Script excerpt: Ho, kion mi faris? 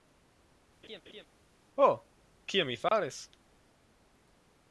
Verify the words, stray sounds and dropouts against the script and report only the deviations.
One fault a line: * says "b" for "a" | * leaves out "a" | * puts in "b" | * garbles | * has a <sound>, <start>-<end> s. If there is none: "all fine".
* has a laugh, 0.8-1.3 s
* has a dropout, 2.9-2.9 s